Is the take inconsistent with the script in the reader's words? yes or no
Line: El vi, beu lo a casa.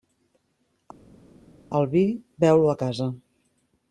no